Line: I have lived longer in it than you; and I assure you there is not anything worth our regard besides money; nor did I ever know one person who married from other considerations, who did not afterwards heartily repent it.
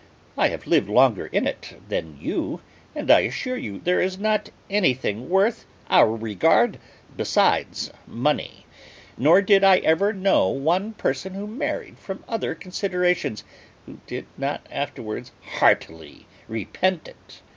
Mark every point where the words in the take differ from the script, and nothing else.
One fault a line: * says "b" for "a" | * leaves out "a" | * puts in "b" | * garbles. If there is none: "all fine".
all fine